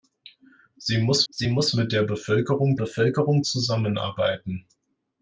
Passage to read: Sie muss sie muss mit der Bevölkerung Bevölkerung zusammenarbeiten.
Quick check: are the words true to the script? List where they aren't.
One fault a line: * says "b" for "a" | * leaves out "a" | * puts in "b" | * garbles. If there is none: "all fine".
all fine